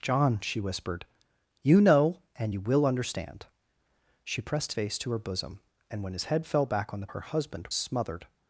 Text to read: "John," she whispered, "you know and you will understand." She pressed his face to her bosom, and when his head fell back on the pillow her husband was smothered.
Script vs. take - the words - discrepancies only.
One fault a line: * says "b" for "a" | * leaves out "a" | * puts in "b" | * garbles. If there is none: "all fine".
* leaves out "his"
* leaves out "pillow"
* leaves out "was"